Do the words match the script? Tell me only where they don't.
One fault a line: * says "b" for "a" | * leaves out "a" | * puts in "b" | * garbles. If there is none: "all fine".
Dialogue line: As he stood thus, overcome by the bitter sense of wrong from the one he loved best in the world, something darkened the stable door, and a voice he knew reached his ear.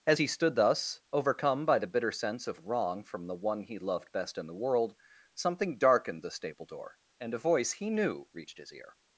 all fine